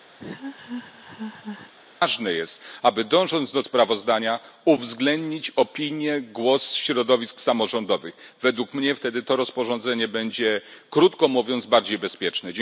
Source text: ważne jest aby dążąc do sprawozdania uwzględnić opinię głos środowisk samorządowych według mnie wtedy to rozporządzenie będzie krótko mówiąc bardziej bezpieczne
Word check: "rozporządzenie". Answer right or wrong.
right